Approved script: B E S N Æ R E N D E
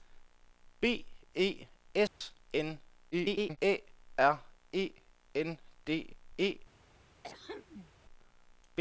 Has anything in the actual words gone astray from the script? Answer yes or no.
yes